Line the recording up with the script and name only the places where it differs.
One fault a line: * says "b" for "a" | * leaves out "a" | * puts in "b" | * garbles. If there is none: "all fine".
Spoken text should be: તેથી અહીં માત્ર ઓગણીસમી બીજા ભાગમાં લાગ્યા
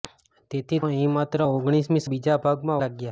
all fine